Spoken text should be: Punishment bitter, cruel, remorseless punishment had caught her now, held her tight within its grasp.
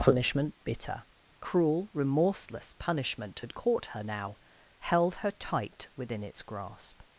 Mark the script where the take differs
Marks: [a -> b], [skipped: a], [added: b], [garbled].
Punishment bitter, cruel, remorseless punishment had caught her now, held her tight within its grasp.